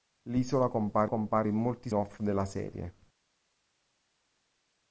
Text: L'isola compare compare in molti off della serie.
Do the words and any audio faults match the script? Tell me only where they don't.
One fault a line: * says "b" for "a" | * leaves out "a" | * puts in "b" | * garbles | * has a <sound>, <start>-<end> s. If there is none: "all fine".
all fine